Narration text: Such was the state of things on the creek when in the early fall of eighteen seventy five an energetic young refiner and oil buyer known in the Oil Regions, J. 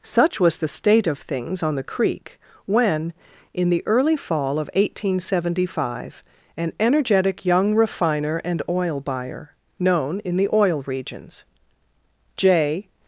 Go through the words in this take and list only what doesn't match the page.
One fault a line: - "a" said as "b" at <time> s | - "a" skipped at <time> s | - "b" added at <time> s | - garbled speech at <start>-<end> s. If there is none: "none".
none